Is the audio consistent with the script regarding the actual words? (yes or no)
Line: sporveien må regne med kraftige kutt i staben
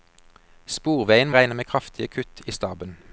no